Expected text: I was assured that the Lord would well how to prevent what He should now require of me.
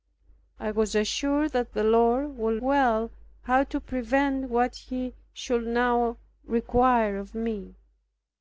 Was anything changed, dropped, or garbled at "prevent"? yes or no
no